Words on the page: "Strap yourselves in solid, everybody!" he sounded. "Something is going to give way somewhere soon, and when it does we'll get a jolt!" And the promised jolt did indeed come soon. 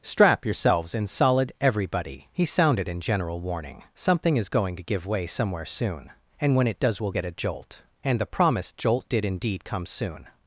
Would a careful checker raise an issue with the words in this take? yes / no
yes